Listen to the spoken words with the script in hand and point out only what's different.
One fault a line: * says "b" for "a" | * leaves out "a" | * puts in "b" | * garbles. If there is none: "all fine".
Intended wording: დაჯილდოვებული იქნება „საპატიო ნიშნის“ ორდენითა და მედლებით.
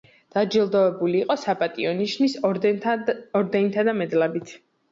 * says "იყო" for "იქნება"